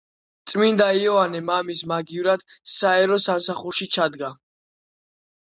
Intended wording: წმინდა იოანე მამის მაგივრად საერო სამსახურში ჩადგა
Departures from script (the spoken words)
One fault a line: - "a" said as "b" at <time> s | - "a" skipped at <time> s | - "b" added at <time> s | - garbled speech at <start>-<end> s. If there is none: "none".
none